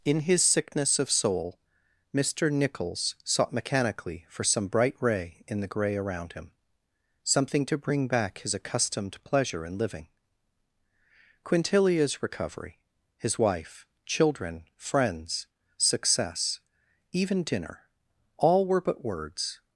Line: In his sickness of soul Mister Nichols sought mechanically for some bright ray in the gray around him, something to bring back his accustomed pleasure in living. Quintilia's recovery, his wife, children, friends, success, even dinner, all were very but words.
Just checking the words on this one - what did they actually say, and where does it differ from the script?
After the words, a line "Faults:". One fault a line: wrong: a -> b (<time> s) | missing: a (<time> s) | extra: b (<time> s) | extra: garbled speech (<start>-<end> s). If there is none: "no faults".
In his sickness of soul Mister Nichols sought mechanically for some bright ray in the gray around him, something to bring back his accustomed pleasure in living. Quintilia's recovery, his wife, children, friends, success, even dinner, all were but words.
Faults:
missing: very (18.8 s)